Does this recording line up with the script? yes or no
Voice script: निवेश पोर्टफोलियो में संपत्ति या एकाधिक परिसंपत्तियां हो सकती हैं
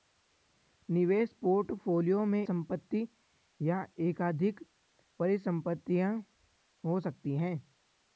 yes